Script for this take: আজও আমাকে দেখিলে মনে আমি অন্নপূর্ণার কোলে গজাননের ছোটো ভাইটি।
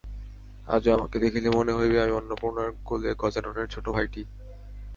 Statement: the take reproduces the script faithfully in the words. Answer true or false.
false